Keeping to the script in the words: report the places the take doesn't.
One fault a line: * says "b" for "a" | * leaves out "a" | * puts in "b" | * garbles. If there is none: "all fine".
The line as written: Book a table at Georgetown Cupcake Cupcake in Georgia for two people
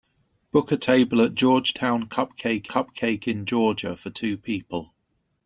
all fine